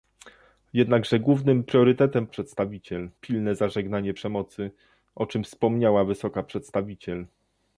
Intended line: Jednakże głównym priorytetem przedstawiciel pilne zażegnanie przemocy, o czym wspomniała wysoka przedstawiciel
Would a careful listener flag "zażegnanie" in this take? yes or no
no